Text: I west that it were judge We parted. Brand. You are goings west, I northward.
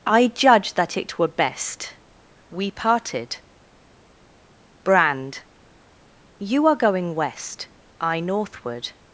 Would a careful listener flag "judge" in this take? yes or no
yes